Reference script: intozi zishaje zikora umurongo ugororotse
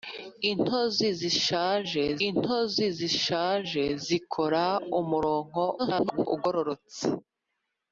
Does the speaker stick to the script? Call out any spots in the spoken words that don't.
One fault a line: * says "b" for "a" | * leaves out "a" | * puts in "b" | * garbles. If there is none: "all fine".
* puts in "intozi zishaje"
* garbles